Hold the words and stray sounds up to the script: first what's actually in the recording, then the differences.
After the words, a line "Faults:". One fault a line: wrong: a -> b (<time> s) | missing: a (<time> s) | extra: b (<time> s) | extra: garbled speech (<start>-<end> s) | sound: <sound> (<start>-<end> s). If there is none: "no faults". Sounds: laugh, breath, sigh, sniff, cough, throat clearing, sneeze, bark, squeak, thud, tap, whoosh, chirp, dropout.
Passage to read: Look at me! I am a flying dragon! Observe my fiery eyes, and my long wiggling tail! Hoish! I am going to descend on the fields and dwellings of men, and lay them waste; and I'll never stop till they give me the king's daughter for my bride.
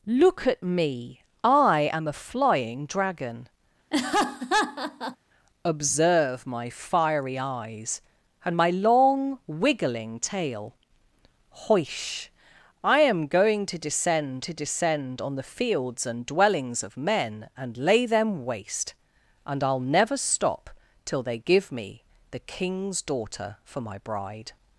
Look at me! I am a flying dragon! Observe my fiery eyes, and my long wiggling tail! Hoish! I am going to descend to descend on the fields and dwellings of men, and lay them waste; and I'll never stop till they give me the king's daughter for my bride.
Faults:
sound: laugh (3.9-5.2 s)
extra: to descend (14.4 s)